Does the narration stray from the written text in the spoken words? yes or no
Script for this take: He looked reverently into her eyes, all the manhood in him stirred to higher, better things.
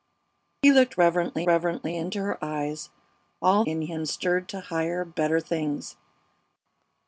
yes